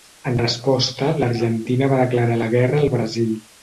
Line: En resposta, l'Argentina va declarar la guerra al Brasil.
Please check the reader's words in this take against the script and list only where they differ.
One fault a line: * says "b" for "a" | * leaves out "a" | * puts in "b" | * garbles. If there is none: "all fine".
all fine